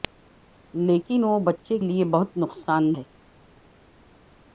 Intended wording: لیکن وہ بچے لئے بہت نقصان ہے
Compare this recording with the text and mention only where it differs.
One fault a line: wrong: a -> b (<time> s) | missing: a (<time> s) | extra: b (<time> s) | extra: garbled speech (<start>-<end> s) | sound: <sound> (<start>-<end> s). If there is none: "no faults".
no faults